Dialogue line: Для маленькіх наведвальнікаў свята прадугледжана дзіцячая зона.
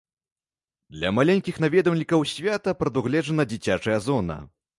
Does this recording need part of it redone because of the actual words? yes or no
no